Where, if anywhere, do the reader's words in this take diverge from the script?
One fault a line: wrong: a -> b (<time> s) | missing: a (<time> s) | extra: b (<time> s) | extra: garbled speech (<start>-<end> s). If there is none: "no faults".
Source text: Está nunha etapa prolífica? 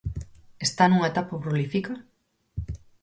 no faults